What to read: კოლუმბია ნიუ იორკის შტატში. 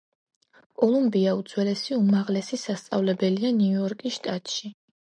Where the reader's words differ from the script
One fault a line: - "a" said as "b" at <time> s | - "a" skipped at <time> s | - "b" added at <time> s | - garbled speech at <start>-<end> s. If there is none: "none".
- "უძველესი უმაღლესი სასწავლებელია" added at 1.4 s